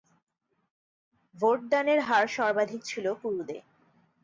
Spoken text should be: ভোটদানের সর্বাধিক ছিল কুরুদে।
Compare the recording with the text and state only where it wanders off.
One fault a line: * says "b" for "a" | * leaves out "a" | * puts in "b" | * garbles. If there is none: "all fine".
* puts in "হার"